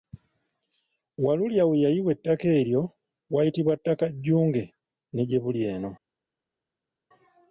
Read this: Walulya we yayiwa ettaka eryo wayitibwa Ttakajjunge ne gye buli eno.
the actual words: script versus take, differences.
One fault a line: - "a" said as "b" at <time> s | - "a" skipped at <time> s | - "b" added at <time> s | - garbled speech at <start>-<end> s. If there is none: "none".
none